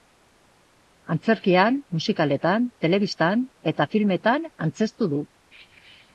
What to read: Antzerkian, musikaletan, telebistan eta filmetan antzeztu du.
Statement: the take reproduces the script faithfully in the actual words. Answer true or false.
true